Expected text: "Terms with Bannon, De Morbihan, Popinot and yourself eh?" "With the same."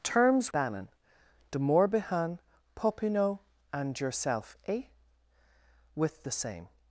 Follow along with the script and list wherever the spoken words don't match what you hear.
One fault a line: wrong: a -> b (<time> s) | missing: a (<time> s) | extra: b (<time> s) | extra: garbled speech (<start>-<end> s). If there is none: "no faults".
missing: with (0.5 s)